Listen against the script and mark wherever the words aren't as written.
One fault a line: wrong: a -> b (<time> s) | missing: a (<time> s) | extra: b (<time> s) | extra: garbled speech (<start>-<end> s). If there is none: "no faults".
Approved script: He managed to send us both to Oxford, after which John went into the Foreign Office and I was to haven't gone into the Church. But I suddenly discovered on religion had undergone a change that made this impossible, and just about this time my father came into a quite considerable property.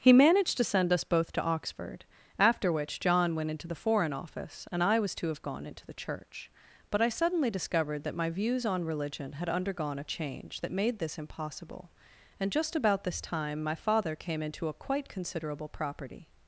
wrong: haven't -> have (5.3 s)
extra: that my views (8.0 s)